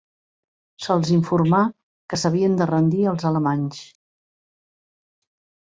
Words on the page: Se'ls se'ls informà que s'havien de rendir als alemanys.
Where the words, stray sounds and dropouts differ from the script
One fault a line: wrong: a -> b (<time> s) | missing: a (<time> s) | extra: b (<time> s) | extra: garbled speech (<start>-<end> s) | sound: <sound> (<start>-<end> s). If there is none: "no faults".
missing: se'ls (1.1 s)